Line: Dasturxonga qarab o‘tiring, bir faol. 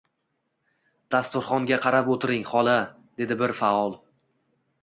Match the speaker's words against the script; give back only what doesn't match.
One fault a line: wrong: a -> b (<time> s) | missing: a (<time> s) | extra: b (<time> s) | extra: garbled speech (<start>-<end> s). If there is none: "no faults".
extra: xola dedi (2.5 s)